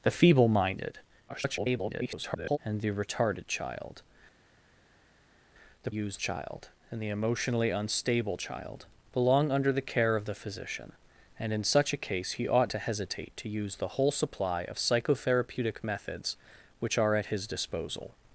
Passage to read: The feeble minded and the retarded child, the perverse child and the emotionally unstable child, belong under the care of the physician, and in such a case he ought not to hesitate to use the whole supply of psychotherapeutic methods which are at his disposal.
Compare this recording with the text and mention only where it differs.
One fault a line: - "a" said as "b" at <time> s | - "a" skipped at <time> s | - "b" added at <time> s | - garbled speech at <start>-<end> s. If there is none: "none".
- garbled speech at 1.3-2.6 s
- "perverse" said as "use" at 5.9 s
- "not" skipped at 12.7 s